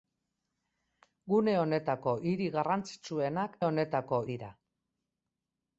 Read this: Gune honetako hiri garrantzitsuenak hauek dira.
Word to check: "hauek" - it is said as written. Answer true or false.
false